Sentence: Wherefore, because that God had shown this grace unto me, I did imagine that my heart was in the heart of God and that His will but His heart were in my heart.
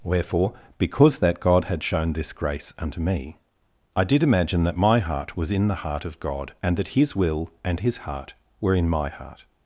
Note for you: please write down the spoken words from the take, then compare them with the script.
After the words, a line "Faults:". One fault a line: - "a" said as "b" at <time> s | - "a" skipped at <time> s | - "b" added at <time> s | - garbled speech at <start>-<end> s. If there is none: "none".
Wherefore, because that God had shown this grace unto me, I did imagine that my heart was in the heart of God and that His will and His heart were in my heart.
Faults:
- "but" said as "and" at 7.6 s